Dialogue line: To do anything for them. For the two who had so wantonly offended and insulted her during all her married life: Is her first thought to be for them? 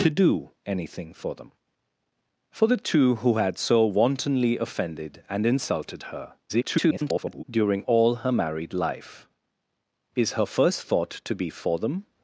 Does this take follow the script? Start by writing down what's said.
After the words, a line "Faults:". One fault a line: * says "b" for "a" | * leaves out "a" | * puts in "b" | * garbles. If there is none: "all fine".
To do anything for them. For the two who had so wantonly offended and insulted her [garbled] during all her married life: Is her first thought to be for them?
Faults:
* garbles